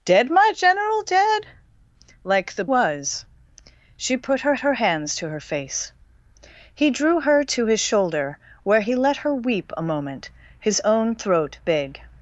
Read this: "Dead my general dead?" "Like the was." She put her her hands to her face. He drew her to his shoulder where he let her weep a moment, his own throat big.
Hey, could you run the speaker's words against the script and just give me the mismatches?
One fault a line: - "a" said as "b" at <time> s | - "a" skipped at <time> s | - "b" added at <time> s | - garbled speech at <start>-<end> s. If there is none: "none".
none